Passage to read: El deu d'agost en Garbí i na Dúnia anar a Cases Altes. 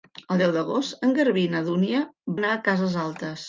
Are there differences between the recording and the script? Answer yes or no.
no